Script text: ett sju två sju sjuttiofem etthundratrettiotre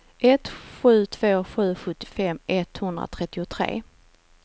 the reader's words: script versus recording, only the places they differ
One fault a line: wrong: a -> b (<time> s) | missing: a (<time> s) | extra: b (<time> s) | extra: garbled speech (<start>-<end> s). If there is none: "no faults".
no faults